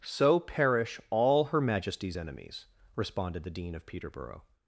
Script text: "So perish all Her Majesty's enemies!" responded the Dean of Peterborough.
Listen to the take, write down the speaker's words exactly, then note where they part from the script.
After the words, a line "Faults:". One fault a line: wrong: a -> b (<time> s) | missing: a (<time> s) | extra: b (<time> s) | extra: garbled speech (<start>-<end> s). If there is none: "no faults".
"So perish all Her Majesty's enemies!" responded the Dean of Peterborough.
Faults:
no faults